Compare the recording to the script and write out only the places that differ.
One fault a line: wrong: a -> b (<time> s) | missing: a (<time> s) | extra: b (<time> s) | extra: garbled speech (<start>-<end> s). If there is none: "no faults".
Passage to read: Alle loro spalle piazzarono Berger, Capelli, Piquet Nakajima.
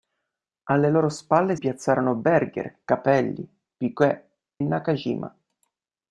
no faults